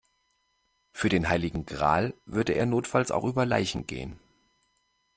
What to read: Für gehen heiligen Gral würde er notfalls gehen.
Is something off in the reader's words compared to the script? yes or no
yes